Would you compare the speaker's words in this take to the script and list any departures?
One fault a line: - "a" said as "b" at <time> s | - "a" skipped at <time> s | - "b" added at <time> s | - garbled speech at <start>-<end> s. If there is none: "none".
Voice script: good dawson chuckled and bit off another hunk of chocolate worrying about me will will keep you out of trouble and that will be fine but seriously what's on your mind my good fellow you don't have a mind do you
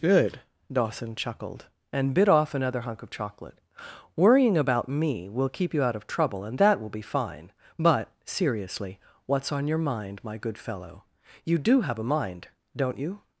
- "will" skipped at 5.5 s
- "don't" said as "do" at 11.6 s
- "do" said as "don't" at 12.8 s